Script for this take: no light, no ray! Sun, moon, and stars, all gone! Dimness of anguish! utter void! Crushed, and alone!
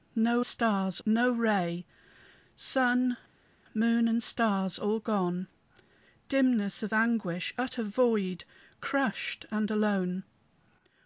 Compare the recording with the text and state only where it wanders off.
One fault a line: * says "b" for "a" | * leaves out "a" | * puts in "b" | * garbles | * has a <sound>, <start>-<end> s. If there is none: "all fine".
* says "stars" for "light"